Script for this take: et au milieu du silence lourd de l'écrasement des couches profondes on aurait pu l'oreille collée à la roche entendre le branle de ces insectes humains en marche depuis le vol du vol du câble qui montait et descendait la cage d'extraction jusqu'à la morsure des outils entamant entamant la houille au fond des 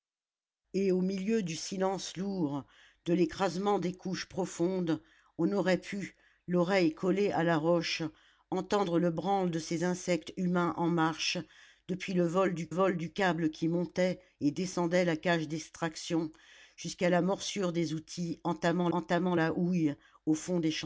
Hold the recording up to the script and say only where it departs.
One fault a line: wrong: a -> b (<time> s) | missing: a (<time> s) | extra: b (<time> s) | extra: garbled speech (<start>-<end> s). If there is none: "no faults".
no faults